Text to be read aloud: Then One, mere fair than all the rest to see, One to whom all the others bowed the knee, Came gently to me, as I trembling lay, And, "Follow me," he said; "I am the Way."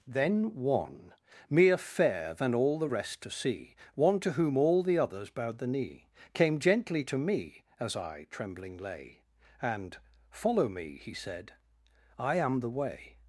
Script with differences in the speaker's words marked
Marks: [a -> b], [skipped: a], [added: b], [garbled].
Then One, mere fair than all the rest to see, One to whom all the others bowed the knee, Came gently to me, as I trembling lay, And, "Follow me," he said; "I am the Way."